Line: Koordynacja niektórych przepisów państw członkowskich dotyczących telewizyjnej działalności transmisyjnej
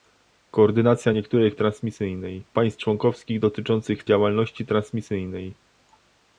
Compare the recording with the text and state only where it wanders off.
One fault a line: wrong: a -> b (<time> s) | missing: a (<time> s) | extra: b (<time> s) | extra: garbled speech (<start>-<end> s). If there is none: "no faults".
wrong: przepisów -> transmisyjnej (1.6 s)
missing: telewizyjnej (4.0 s)